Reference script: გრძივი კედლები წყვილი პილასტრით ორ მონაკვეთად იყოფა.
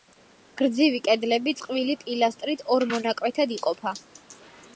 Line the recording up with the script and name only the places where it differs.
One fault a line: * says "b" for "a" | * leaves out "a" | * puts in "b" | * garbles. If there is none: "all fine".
all fine